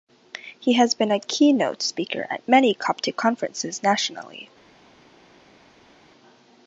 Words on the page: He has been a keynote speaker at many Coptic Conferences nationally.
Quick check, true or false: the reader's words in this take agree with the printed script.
true